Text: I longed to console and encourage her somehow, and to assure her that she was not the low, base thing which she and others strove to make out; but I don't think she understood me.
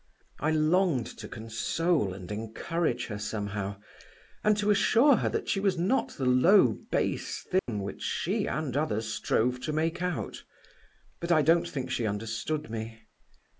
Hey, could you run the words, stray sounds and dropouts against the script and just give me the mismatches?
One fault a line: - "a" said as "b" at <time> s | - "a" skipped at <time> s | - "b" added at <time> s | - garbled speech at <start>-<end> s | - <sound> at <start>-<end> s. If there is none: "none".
- dropout at 7.6-7.7 s